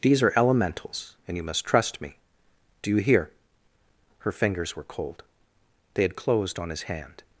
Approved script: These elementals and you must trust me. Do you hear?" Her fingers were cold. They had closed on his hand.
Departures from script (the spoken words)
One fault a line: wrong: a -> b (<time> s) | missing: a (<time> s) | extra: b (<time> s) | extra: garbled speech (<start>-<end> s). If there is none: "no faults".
extra: are (0.2 s)